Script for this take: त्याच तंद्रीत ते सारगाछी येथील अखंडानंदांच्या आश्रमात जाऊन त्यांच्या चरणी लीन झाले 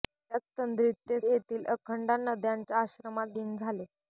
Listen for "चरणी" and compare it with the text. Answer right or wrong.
wrong